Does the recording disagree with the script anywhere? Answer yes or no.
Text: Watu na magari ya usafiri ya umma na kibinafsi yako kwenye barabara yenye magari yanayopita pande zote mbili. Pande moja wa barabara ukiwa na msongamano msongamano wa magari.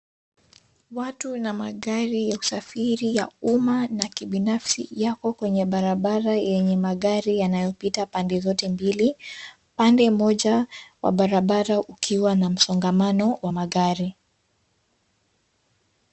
yes